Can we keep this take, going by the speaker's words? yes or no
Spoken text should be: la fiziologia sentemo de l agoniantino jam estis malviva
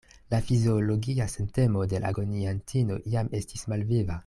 yes